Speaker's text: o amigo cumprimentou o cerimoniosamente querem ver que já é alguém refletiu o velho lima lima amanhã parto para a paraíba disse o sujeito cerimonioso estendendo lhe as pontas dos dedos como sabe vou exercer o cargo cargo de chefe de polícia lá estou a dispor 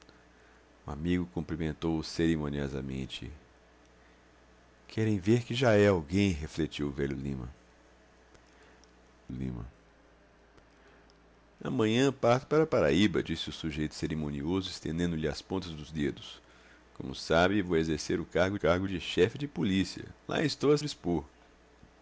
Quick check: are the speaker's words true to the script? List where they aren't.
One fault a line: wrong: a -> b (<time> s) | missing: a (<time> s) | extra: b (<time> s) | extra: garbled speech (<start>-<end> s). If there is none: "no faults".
no faults